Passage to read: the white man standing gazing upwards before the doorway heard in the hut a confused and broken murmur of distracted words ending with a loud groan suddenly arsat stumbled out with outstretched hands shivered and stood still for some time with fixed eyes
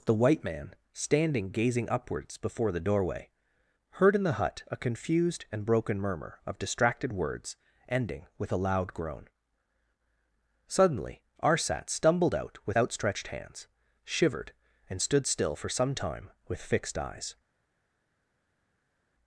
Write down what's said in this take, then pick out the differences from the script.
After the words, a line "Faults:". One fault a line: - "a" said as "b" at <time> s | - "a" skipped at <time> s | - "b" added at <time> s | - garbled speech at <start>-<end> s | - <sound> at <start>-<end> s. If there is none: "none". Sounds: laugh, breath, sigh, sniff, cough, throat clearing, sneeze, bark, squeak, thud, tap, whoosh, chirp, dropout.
the white man standing gazing upwards before the doorway heard in the hut a confused and broken murmur of distracted words ending with a loud groan suddenly arsat stumbled out with outstretched hands shivered and stood still for some time with fixed eyes
Faults:
none